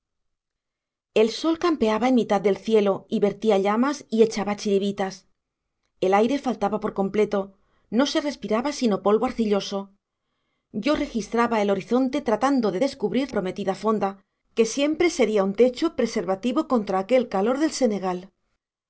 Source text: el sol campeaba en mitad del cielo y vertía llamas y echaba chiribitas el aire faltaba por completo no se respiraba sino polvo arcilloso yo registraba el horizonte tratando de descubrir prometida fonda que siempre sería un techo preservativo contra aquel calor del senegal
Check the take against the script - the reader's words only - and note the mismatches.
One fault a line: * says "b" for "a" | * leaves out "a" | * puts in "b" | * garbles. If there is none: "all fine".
all fine